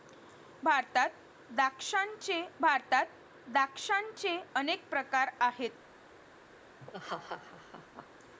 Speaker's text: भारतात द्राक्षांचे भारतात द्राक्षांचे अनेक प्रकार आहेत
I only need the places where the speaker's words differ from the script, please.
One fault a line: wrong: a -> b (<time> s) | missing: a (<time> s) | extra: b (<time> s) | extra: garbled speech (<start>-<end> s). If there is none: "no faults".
no faults